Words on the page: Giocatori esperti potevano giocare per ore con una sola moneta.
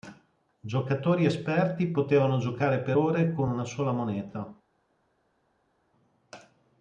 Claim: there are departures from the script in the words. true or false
false